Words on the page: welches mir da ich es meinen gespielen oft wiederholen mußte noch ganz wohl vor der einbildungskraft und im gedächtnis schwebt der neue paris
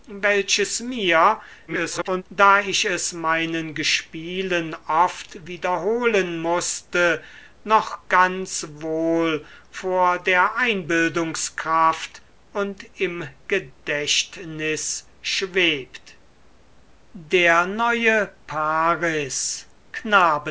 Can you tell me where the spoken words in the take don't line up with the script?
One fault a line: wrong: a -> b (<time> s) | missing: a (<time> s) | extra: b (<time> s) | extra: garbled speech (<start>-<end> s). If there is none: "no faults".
extra: garbled speech (1.7-2.2 s)